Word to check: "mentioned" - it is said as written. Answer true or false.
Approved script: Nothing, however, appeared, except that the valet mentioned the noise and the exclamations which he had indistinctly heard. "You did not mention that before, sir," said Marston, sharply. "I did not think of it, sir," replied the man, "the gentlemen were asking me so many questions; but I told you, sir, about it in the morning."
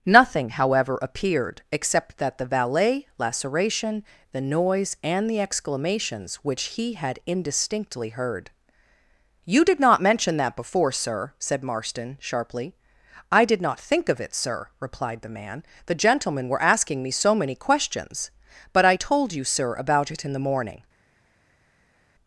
false